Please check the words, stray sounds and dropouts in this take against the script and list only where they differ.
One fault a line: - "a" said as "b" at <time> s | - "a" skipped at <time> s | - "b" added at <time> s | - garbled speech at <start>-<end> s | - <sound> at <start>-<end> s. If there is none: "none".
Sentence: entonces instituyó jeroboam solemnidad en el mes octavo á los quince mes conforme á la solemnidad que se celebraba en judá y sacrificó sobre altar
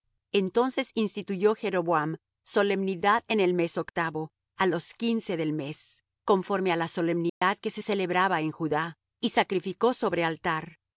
- "del" added at 5.4 s
- dropout at 7.3-7.4 s